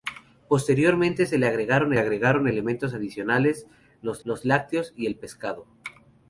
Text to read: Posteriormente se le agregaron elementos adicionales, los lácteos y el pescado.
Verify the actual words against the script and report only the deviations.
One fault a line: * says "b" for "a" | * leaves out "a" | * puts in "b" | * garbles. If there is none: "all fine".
* puts in "agregaron"
* puts in "los"